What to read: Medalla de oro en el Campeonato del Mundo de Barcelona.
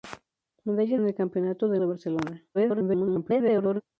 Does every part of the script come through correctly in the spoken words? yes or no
no